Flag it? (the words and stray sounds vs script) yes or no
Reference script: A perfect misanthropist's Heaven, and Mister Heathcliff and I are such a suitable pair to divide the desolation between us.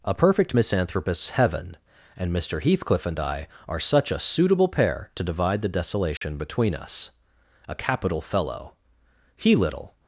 yes